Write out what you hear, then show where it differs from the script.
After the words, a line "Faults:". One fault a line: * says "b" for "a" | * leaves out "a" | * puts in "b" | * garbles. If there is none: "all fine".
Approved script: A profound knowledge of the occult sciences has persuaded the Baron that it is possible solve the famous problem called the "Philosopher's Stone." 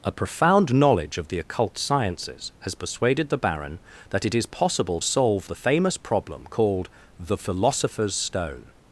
A profound knowledge of the occult sciences has persuaded the Baron that it is possible solve the famous problem called the "Philosopher's Stone."
Faults:
all fine